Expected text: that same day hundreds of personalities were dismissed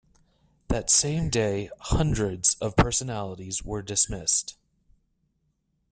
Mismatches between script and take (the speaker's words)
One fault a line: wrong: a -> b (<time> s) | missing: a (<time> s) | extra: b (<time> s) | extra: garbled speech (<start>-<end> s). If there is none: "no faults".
no faults